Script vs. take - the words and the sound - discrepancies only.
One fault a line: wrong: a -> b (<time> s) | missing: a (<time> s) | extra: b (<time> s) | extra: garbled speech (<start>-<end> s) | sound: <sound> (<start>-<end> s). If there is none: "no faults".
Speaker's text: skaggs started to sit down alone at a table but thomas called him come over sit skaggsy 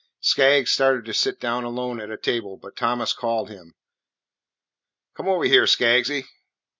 wrong: sit -> here (5.4 s)